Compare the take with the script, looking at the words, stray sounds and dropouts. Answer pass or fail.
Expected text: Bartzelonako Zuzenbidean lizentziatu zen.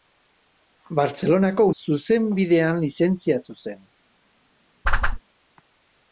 fail